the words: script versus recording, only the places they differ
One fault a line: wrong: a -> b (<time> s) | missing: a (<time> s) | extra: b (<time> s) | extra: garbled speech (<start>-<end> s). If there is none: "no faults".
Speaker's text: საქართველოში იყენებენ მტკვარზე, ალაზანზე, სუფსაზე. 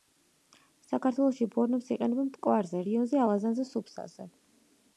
extra: ბორნებს (1.6 s)
extra: რიონზე (2.9 s)